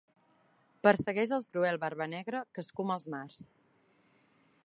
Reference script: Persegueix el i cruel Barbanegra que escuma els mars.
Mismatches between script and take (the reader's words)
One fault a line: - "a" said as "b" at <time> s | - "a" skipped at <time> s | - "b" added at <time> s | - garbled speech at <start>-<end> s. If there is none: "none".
none